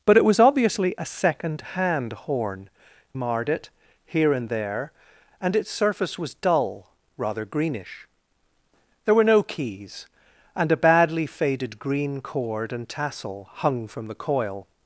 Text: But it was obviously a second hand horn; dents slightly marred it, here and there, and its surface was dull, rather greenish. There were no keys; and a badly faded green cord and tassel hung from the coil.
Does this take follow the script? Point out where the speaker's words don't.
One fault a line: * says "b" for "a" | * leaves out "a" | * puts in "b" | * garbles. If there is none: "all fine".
* leaves out "dents slightly"